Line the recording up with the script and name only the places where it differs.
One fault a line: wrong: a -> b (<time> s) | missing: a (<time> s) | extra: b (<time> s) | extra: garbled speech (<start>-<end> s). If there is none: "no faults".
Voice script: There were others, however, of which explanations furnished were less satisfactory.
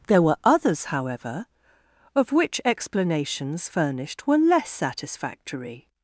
no faults